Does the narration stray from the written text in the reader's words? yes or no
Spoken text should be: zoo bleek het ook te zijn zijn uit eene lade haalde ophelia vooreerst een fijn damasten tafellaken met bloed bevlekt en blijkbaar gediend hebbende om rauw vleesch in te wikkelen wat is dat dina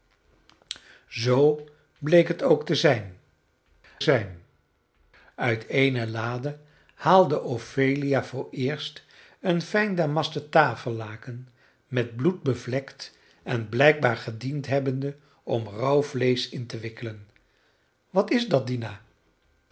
no